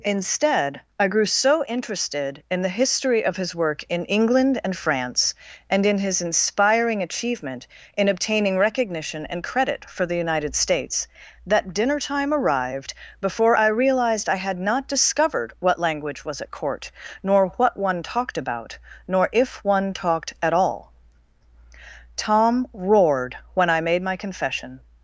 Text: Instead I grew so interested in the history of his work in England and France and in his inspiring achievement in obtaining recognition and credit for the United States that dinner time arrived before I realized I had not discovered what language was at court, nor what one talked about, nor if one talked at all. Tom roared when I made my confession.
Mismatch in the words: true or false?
false